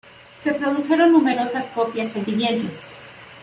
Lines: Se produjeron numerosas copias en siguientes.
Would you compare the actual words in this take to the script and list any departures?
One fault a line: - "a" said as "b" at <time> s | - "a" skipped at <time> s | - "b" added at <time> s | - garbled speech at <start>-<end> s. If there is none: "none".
none